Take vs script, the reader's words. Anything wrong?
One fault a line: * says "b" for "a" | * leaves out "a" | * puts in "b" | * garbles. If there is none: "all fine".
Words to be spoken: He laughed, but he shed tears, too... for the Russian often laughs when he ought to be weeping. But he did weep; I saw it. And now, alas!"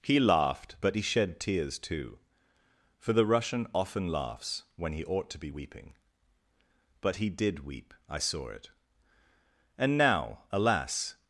all fine